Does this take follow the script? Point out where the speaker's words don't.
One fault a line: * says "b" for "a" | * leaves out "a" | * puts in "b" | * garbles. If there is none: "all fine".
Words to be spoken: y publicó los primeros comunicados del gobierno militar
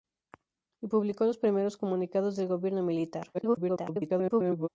* garbles